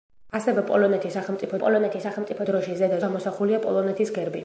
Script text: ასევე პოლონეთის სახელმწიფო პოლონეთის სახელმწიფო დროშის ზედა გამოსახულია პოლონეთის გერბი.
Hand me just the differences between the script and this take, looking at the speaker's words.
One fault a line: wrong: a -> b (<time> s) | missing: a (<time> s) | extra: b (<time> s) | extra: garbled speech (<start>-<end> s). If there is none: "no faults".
no faults